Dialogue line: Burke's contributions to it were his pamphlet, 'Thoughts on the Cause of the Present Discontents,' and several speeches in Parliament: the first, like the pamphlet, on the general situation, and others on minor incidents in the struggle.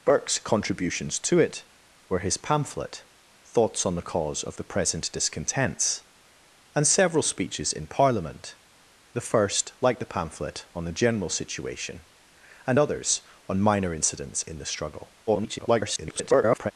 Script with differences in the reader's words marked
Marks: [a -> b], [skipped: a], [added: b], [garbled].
Burke's contributions to it were his pamphlet, 'Thoughts on the Cause of the Present Discontents,' and several speeches in Parliament: the first, like the pamphlet, on the general situation, and others on minor incidents in the struggle. [garbled]